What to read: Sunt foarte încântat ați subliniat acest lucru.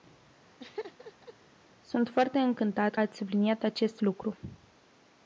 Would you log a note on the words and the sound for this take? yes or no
yes